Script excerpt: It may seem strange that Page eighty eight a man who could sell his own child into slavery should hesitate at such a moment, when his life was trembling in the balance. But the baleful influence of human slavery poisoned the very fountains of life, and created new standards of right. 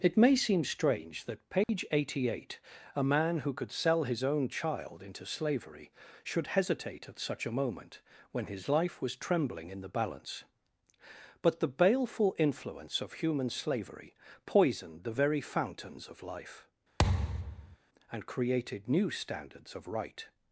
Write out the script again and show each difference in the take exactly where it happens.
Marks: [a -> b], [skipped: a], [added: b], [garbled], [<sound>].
It may seem strange that Page [dropout] eighty eight a man who could sell his own child into slavery should hesitate at such a moment, when his life was trembling in the balance. But the baleful influence of human slavery poisoned the very fountains of life, [thud] and created new standards of right.